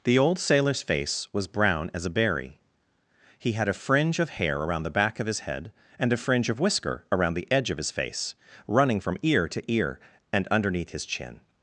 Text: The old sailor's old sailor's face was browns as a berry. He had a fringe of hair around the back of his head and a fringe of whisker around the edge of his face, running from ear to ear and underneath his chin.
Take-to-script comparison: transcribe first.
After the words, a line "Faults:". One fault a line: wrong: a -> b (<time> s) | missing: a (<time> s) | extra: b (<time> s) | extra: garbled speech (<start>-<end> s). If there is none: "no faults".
The old sailor's face was brown as a berry. He had a fringe of hair around the back of his head and a fringe of whisker around the edge of his face, running from ear to ear and underneath his chin.
Faults:
missing: old sailor's (0.8 s)
wrong: browns -> brown (1.5 s)